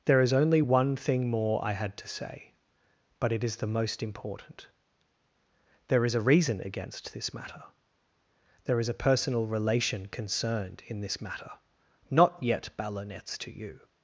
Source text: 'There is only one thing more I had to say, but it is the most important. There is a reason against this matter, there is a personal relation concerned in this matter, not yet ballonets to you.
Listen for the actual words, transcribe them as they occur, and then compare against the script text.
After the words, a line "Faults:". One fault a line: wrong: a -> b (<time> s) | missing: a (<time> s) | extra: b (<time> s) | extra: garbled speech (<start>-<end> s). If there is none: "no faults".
'There is only one thing more I had to say, but it is the most important. There is a reason against this matter, there is a personal relation concerned in this matter, not yet ballonets to you.
Faults:
no faults